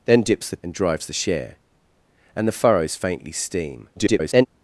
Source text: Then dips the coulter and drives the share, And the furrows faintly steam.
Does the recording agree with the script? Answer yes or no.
no